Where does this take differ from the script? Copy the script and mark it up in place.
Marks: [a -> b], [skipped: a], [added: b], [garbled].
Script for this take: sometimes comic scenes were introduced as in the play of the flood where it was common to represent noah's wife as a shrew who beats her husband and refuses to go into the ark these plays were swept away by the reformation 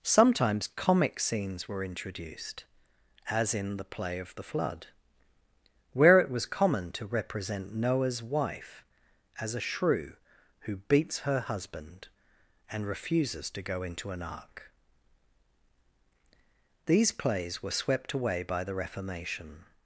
sometimes comic scenes were introduced as in the play of the flood where it was common to represent noah's wife as a shrew who beats her husband and refuses to go into [the -> an] ark these plays were swept away by the reformation